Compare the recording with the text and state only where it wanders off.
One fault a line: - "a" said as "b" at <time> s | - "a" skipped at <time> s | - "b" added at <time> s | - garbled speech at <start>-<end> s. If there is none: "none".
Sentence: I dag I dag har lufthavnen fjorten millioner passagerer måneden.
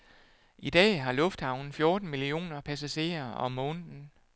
- "I dag" skipped at 1.0 s
- "om" added at 3.3 s